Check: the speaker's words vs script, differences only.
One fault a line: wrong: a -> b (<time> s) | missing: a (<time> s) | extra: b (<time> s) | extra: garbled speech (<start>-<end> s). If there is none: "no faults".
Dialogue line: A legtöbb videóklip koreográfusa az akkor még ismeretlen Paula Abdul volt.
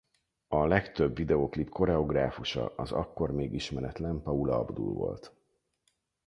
no faults